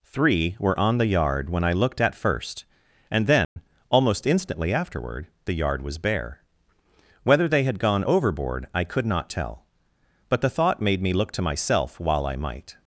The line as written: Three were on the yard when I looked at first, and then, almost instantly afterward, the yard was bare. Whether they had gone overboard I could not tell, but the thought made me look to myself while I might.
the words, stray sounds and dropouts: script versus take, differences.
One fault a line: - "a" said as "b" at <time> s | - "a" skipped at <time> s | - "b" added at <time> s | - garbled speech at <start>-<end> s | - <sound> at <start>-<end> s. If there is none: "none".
- dropout at 3.4-3.6 s